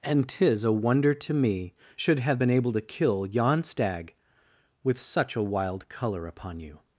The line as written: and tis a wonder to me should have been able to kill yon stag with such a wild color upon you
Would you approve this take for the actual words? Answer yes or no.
yes